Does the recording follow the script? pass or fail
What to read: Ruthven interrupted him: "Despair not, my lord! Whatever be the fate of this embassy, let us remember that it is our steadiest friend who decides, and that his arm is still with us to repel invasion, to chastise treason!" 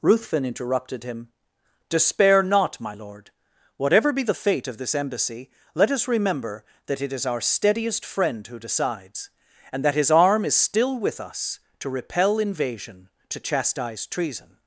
pass